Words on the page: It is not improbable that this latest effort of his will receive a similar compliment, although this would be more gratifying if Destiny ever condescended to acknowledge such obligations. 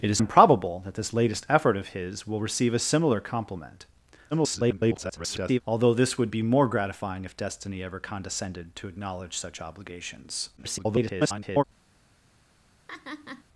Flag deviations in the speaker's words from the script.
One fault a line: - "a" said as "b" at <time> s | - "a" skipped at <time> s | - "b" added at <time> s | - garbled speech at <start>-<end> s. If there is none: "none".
- "not" skipped at 0.2 s
- garbled speech at 4.3-5.6 s
- garbled speech at 10.6-11.6 s